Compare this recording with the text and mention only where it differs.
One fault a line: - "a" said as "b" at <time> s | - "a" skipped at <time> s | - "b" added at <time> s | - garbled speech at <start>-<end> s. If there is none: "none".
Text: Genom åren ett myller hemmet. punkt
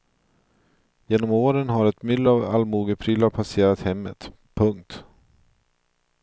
- "har" added at 1.7 s
- "av allmogeprylar passerat" added at 2.3 s